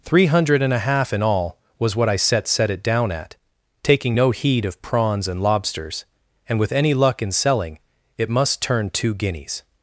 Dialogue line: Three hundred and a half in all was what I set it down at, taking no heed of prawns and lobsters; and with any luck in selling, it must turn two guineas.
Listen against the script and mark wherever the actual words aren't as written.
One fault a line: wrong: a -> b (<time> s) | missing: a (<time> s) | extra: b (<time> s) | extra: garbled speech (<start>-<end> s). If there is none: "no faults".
extra: set (2.5 s)